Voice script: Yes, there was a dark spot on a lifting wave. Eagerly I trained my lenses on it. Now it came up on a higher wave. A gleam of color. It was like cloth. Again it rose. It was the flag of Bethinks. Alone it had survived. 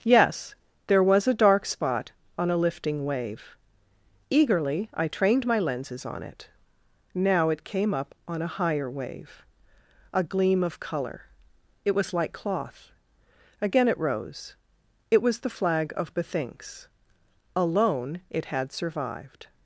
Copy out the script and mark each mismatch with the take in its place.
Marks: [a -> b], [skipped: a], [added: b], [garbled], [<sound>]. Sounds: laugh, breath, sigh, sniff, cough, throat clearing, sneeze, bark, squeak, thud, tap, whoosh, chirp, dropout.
Yes, there was a dark spot on a lifting wave. Eagerly I trained my lenses on it. Now it came up on a higher wave. A gleam of color. It was like cloth. Again it rose. It was the flag of Bethinks. Alone it had survived.